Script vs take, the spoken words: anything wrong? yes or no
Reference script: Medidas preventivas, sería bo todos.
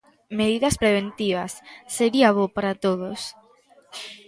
yes